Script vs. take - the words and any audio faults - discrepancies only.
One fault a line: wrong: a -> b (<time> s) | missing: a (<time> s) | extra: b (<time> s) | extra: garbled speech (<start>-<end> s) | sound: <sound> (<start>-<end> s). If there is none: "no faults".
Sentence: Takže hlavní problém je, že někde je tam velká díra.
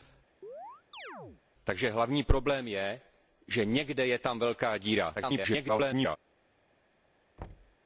sound: chirp (0.4-1.4 s)
extra: garbled speech (5.2-6.2 s)
sound: thud (7.4-7.8 s)